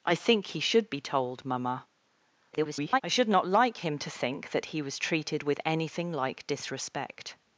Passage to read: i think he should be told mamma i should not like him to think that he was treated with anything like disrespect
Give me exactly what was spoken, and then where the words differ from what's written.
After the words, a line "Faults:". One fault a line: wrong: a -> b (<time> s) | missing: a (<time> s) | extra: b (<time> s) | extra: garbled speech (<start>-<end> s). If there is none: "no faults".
i think he should be told mamma [garbled] i should not like him to think that he was treated with anything like disrespect
Faults:
extra: garbled speech (2.5-3.0 s)